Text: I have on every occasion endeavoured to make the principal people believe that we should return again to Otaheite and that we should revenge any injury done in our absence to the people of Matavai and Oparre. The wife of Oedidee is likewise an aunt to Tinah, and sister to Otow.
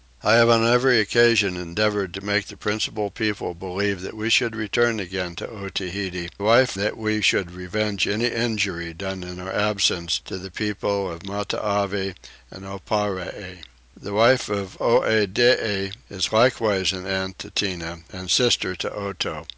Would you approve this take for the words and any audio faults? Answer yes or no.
no